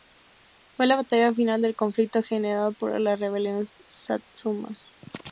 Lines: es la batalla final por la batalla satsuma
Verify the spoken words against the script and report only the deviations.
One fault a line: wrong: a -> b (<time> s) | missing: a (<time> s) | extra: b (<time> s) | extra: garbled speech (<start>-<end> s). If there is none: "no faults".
wrong: es -> fue (0.8 s)
extra: del conflicto generado (1.6 s)
wrong: batalla -> rebelión (3.2 s)